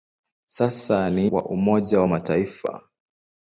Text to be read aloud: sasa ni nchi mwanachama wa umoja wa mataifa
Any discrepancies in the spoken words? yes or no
yes